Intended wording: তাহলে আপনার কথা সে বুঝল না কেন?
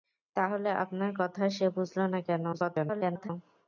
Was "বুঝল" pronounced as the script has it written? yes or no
yes